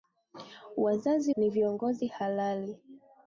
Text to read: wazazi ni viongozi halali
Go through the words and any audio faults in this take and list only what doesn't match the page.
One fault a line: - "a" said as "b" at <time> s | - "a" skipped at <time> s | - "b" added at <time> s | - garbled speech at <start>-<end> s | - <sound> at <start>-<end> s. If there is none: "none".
none